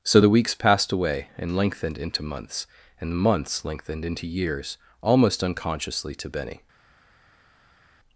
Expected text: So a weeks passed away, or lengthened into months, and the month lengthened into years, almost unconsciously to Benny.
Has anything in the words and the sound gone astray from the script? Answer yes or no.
yes